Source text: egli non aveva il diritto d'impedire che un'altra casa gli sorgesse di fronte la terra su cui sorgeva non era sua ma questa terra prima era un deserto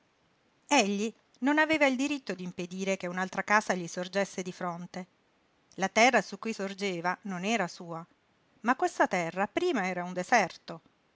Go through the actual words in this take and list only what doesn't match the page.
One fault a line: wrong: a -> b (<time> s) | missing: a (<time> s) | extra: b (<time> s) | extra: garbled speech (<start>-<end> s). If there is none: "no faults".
no faults